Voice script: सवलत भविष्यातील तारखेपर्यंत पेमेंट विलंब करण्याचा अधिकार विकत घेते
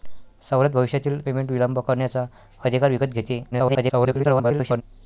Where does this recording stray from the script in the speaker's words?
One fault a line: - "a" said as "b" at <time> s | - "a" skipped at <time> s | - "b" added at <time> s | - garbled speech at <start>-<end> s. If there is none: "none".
- "तारखेपर्यंत" skipped at 1.2 s
- garbled speech at 3.5-4.8 s